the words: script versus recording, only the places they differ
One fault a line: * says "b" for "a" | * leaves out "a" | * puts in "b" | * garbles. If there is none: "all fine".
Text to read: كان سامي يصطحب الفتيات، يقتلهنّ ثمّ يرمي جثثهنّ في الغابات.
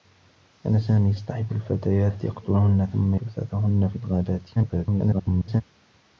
* leaves out "يرمي"
* garbles